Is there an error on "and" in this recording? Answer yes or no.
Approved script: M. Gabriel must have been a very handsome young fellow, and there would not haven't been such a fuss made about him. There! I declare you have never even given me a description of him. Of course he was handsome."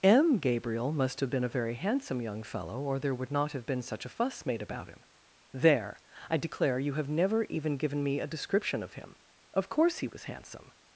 yes